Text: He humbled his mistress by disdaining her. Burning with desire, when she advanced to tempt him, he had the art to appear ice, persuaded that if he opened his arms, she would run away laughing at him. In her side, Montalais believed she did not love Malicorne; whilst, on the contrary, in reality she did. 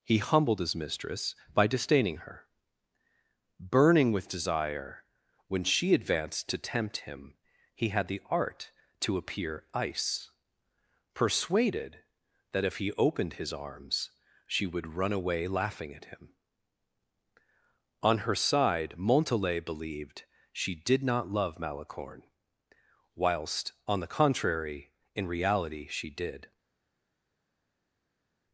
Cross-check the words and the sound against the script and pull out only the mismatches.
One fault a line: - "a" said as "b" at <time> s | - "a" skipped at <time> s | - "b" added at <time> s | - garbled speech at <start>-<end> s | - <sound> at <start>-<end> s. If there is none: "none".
- "In" said as "On" at 18.0 s